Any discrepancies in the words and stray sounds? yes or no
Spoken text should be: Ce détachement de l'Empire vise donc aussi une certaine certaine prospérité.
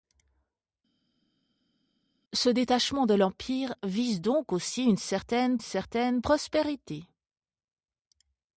no